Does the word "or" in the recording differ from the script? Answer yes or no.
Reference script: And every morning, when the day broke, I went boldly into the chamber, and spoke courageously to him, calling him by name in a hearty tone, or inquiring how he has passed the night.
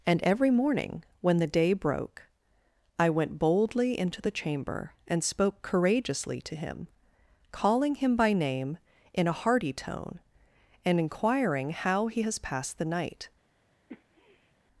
yes